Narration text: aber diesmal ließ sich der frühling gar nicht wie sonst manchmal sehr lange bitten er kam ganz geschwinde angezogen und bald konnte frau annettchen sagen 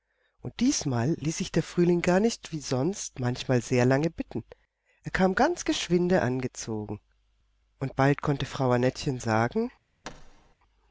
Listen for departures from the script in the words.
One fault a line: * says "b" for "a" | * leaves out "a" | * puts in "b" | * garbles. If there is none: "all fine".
* says "und" for "aber"